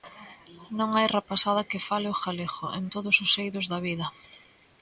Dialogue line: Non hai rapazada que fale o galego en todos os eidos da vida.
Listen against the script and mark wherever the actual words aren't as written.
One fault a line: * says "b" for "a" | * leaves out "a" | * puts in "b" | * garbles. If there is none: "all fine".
all fine